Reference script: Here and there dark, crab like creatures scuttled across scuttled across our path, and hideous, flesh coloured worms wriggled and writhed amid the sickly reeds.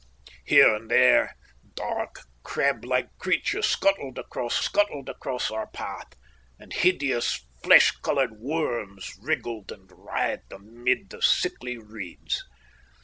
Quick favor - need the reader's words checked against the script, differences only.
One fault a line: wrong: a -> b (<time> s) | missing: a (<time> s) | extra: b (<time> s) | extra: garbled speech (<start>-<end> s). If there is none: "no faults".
no faults